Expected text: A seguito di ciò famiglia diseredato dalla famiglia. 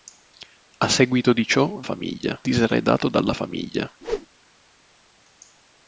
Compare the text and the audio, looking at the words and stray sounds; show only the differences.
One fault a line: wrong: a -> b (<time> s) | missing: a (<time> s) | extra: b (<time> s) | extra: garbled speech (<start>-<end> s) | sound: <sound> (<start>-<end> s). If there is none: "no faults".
sound: whoosh (4.0-4.3 s)